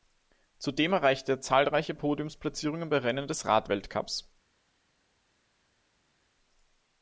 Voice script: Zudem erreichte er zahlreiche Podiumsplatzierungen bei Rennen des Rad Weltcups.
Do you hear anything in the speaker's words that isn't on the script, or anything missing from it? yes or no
no